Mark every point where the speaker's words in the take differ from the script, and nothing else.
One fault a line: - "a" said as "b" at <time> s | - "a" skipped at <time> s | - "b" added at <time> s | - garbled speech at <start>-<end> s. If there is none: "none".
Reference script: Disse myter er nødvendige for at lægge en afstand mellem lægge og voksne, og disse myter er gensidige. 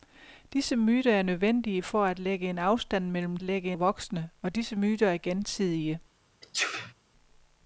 none